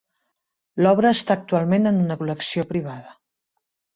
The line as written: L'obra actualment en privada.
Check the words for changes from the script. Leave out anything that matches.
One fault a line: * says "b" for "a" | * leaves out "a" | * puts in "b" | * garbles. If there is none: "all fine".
* puts in "està"
* puts in "una col·lecció"